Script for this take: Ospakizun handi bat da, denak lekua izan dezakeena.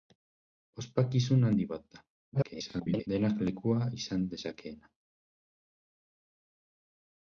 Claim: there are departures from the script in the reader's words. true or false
true